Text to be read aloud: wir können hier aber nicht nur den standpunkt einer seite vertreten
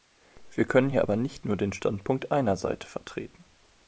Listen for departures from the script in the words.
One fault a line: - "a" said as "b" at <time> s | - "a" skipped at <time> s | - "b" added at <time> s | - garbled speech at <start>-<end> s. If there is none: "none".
none